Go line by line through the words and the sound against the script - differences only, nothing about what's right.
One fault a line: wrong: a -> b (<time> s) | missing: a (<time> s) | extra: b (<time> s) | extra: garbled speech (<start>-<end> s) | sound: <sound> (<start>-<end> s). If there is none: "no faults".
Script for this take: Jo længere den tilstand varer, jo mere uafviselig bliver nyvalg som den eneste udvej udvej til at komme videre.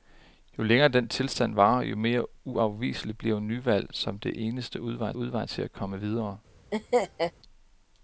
sound: laugh (6.7-7.3 s)